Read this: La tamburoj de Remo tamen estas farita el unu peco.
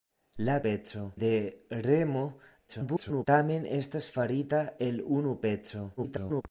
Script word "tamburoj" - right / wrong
wrong